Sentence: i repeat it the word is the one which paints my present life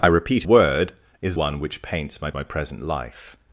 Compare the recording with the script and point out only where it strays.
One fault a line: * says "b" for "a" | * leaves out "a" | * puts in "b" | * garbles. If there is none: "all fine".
* leaves out "it the"
* leaves out "the"
* puts in "my"